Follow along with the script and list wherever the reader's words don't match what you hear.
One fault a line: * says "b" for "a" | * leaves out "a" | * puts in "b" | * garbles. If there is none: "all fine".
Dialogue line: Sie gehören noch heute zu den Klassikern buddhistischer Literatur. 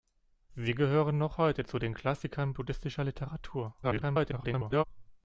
* garbles